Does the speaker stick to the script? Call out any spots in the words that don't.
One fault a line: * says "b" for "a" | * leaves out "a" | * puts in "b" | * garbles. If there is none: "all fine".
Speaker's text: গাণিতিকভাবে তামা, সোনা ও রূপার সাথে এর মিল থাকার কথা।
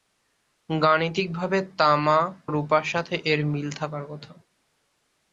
* leaves out "সোনা ও"